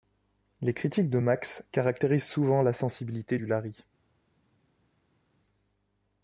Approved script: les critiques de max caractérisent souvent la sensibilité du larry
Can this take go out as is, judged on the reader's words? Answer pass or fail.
pass